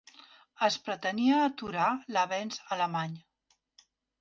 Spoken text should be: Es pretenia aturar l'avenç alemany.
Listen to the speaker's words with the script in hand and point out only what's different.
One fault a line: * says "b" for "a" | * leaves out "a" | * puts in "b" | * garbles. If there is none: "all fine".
all fine